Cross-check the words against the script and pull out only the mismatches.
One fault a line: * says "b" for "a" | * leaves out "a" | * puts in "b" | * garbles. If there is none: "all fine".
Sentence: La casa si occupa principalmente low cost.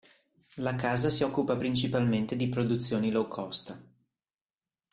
* puts in "di produzioni"